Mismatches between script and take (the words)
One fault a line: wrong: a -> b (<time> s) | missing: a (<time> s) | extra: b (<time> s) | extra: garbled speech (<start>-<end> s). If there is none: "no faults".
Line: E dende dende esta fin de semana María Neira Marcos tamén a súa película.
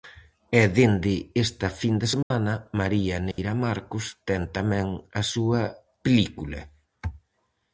missing: dende (1.1 s)
extra: ten (4.3 s)